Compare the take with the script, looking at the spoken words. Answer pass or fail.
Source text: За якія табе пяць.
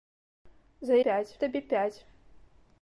fail